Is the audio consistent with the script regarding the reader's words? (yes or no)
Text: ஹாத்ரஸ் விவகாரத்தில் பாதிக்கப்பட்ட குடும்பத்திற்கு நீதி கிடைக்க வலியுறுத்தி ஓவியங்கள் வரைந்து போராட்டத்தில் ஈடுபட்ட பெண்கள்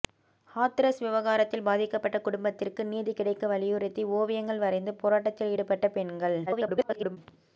no